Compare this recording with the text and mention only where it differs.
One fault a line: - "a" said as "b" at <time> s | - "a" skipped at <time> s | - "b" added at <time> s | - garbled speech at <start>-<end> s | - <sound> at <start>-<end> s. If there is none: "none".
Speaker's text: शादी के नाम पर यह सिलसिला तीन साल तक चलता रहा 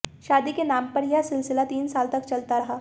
none